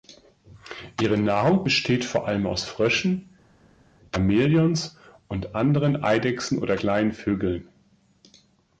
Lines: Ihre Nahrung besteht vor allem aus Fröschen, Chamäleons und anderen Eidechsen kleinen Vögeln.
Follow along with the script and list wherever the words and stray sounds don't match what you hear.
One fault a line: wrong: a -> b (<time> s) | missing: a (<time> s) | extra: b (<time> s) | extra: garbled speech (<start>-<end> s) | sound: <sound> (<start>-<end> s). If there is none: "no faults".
extra: oder (6.6 s)